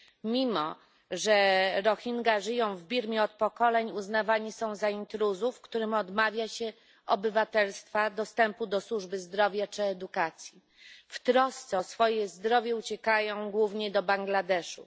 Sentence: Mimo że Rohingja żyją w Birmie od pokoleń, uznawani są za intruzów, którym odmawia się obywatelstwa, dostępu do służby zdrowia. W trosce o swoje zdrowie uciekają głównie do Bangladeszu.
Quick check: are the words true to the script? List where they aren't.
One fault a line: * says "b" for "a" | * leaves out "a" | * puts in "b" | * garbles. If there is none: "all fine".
* puts in "czy edukacji"